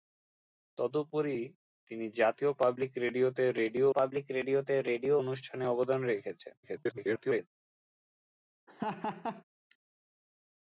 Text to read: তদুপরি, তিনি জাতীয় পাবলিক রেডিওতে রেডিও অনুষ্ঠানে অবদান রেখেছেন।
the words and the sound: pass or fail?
fail